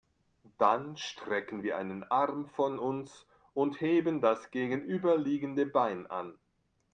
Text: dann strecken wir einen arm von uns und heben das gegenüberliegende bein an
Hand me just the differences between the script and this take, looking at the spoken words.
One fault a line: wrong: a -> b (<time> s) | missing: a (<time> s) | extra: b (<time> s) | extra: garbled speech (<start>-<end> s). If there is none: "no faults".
no faults